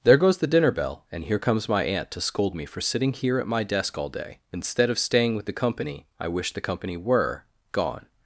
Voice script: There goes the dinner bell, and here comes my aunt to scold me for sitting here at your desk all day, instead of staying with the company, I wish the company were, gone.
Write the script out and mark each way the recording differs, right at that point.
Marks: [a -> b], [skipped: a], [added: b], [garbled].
There goes the dinner bell, and here comes my aunt to scold me for sitting here at [your -> my] desk all day, instead of staying with the company, I wish the company were, gone.